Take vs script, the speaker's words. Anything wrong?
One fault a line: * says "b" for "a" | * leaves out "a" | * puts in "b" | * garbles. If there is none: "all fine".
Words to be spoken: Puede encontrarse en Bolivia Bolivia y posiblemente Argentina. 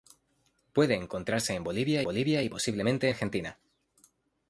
all fine